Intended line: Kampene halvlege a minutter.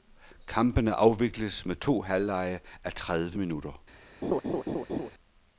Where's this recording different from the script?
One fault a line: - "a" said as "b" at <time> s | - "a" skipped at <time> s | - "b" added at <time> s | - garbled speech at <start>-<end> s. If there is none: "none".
- "afvikles med to" added at 0.9 s
- "tredive" added at 2.9 s